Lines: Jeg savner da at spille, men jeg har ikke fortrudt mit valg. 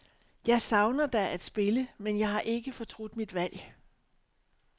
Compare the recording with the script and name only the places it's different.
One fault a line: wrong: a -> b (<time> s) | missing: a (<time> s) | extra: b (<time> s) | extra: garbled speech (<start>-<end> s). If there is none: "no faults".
no faults